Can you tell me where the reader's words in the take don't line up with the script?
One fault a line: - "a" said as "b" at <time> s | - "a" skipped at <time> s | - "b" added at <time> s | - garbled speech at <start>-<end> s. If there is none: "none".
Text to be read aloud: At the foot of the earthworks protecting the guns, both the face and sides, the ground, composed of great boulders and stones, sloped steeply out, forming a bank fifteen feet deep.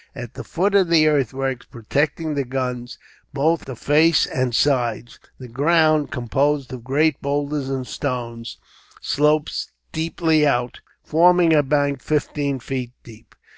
none